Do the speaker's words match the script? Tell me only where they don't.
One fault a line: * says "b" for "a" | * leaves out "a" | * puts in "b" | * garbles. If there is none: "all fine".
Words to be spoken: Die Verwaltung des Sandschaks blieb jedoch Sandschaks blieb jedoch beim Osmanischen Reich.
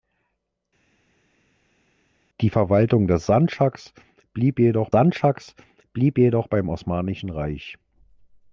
all fine